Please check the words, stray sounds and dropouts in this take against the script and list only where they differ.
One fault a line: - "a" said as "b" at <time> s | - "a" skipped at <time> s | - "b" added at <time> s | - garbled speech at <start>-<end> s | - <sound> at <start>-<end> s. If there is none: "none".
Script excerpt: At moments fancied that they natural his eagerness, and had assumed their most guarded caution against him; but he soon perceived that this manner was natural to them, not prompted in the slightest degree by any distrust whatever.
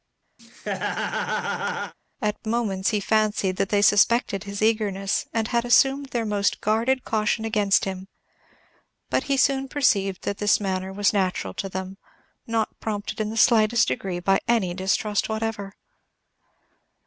- laugh at 0.4-1.9 s
- "he" added at 2.9 s
- "natural" said as "suspected" at 3.8 s